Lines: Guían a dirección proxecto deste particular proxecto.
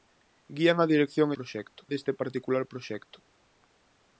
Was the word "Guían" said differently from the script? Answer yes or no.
no